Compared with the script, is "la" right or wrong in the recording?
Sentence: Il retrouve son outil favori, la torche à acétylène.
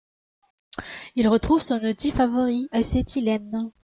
wrong